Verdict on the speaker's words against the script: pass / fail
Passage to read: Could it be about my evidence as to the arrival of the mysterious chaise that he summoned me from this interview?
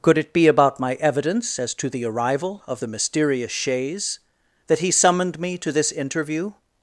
fail